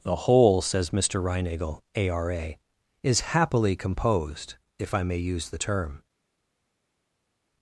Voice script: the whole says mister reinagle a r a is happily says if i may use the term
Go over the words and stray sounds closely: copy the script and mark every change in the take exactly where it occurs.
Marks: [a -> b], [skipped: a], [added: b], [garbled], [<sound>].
the whole says mister reinagle a r a is happily [says -> composed] if i may use the term